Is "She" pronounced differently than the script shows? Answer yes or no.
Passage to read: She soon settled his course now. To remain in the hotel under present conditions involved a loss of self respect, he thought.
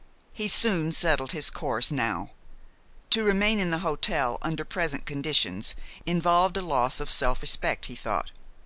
yes